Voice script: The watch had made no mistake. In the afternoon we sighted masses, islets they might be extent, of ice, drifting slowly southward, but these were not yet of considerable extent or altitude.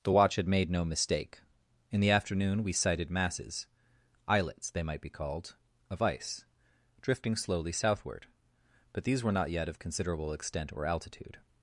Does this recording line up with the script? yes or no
no